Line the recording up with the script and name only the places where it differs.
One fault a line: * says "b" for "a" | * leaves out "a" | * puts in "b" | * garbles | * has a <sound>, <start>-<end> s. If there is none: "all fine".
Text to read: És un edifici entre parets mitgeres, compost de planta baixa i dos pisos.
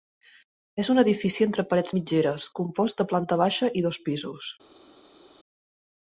all fine